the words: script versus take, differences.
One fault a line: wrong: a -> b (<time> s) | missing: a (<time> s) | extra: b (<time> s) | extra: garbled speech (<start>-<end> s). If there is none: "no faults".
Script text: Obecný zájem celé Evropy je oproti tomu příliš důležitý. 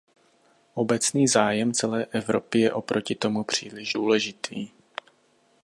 no faults